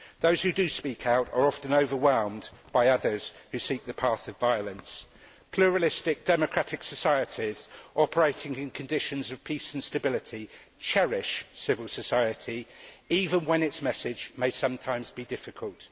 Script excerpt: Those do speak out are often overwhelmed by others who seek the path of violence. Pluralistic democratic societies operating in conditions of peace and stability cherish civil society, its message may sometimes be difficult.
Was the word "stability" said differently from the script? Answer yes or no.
no